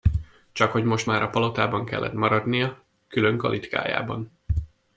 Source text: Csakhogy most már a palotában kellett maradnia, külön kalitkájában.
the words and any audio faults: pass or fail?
pass